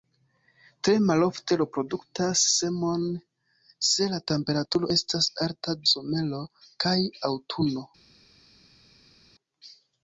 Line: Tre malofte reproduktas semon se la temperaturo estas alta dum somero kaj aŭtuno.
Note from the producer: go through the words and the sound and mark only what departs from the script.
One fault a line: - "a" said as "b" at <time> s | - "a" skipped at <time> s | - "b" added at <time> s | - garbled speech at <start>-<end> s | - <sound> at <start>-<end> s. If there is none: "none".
- "dum" skipped at 5.8 s